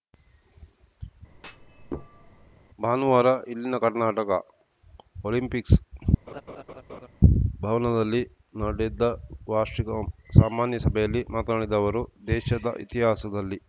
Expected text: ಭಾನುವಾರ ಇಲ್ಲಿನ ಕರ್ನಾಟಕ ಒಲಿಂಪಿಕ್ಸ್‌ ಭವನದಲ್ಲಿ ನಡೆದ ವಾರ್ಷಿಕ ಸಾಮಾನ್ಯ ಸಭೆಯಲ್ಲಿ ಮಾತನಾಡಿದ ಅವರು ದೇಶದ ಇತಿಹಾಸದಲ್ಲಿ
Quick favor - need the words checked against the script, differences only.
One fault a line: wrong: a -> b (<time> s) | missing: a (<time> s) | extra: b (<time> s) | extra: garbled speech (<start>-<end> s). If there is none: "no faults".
no faults